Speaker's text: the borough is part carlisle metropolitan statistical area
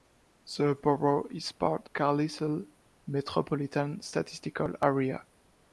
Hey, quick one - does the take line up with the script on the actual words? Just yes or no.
yes